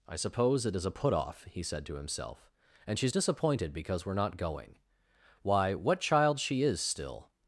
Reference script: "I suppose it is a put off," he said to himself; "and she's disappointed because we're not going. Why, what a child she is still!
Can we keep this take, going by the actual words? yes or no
no